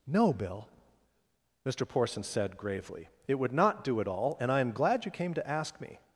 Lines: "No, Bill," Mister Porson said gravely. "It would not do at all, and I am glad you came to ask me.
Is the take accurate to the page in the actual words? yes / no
yes